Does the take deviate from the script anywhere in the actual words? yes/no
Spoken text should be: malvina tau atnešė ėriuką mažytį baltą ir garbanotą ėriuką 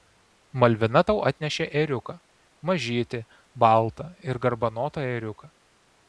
no